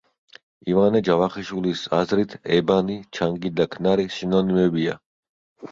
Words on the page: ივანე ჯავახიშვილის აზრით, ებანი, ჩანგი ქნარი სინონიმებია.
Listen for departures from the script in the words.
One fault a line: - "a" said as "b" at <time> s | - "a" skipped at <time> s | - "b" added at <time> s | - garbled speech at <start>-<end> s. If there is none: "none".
- "და" added at 3.6 s